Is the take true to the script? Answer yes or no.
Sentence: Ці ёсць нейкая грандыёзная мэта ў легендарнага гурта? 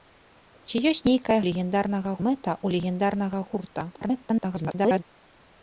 no